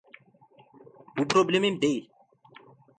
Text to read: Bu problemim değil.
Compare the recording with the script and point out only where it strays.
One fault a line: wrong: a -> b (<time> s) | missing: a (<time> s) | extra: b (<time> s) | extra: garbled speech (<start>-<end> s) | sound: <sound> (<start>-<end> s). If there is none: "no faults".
no faults